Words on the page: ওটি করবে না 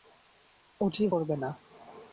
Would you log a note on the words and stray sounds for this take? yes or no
no